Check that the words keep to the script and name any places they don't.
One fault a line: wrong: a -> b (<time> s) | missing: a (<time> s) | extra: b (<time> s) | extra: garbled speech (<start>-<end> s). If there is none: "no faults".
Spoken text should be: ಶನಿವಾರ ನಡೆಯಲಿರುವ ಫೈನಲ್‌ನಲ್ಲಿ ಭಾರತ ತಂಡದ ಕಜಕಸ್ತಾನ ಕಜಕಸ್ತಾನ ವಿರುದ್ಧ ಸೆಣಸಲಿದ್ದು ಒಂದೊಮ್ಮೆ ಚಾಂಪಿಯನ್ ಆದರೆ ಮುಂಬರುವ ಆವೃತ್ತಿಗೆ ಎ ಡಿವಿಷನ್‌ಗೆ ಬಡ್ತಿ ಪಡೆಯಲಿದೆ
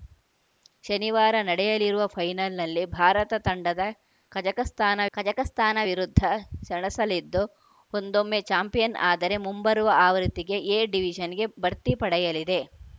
no faults